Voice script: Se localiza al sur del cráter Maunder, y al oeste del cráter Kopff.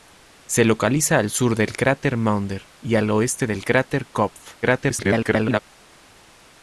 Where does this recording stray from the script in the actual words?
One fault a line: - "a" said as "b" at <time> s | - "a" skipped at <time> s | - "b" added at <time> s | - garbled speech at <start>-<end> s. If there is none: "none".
- garbled speech at 4.6-5.6 s